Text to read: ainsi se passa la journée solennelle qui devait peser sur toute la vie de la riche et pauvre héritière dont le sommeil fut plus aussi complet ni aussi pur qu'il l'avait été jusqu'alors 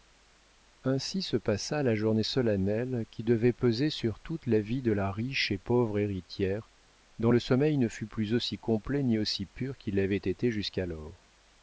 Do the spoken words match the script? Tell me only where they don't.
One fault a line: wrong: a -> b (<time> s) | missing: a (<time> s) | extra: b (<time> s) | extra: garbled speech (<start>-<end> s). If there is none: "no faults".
extra: ne (7.8 s)